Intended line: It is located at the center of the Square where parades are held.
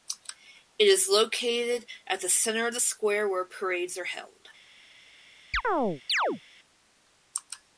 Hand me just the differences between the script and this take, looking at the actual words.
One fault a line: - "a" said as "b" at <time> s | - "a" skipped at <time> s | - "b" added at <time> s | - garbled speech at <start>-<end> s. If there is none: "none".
none